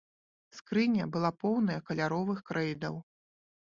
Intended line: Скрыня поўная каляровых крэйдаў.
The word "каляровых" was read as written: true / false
true